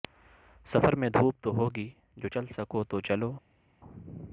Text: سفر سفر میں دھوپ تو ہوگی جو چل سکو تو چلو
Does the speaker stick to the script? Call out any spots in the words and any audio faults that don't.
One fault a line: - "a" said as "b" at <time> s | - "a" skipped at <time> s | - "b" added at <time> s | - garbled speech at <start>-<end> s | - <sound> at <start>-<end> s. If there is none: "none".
- "سفر" skipped at 0.9 s